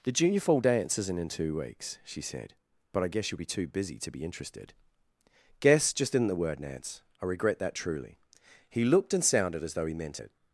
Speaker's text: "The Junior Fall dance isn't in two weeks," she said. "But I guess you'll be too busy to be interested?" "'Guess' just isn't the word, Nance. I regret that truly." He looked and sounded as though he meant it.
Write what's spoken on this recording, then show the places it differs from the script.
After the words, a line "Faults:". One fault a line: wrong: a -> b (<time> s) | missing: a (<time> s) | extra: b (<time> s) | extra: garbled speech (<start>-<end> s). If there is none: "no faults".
"The Junior Fall dance isn't in two weeks," she said. "But I guess you'll be too busy to be interested?" "'Guess' just isn't the word, Nance. I regret that truly." He looked and sounded as though he meant it.
Faults:
no faults